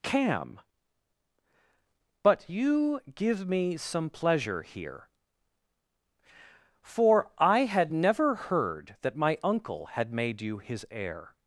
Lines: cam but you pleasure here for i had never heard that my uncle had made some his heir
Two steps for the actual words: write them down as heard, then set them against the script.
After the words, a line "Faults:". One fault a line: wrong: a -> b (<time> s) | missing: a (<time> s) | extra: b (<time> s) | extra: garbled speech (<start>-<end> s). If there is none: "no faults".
cam but you give me some pleasure here for i had never heard that my uncle had made you his heir
Faults:
extra: give me some (3.1 s)
wrong: some -> you (10.4 s)